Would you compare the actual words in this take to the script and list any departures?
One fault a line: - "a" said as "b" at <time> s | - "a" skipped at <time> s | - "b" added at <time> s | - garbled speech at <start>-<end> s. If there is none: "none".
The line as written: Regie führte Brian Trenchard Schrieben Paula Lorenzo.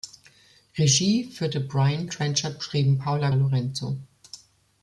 none